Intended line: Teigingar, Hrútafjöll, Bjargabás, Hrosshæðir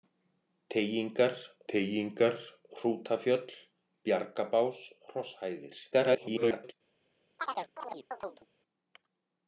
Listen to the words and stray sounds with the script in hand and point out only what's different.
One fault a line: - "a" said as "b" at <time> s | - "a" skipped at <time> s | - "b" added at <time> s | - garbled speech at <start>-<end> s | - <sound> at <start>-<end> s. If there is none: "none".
- "teigingar" added at 1.7 s
- garbled speech at 5.9-6.7 s
- chirp at 7.4-8.5 s